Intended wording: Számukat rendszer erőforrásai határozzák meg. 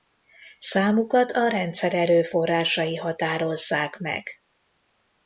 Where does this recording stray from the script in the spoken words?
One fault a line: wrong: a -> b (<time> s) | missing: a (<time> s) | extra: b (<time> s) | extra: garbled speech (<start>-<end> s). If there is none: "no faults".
extra: a (1.3 s)